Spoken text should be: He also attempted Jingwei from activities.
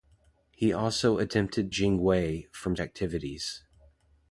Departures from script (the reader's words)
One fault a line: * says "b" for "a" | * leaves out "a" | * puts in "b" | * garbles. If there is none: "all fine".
all fine